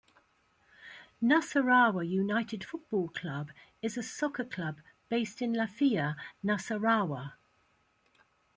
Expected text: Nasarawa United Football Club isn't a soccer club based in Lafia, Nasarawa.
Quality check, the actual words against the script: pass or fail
fail